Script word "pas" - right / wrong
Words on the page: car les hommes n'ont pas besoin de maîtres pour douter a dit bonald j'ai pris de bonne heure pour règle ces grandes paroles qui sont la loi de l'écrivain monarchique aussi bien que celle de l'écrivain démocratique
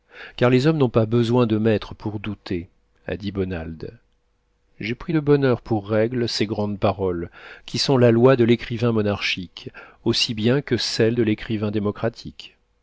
right